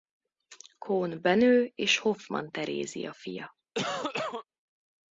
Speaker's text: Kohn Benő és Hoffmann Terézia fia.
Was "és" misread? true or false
false